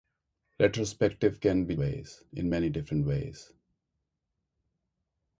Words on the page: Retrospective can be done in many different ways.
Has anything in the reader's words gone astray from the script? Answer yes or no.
yes